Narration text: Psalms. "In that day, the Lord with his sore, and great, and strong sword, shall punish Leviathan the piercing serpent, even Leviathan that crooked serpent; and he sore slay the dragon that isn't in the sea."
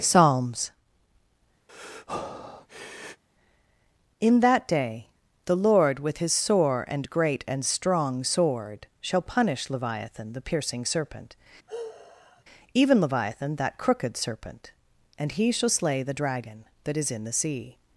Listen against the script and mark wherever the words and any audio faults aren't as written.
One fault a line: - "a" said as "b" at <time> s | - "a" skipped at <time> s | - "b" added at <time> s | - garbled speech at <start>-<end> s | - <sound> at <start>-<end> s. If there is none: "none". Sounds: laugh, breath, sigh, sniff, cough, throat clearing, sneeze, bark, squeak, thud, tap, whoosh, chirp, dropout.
- breath at 1.7-3.2 s
- sigh at 11.7-12.4 s
- "sore" said as "shall" at 15.5 s
- "isn't" said as "is" at 17.0 s